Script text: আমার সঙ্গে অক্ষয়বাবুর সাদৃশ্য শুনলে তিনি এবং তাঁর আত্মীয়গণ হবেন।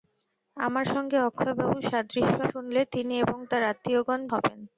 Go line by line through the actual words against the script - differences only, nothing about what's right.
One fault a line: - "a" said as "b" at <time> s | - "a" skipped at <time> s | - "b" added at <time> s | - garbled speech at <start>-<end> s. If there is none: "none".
none